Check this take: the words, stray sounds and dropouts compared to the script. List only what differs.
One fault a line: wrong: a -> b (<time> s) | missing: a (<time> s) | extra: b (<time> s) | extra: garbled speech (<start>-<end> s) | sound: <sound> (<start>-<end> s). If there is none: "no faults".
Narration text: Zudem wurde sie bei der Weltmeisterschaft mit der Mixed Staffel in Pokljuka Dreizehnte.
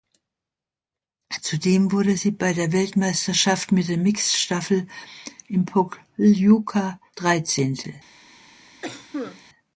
sound: cough (8.8-9.4 s)